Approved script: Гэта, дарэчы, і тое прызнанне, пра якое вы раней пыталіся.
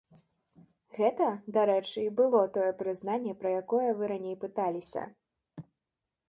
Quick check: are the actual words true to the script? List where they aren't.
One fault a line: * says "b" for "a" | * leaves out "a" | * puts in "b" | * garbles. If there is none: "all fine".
* puts in "было"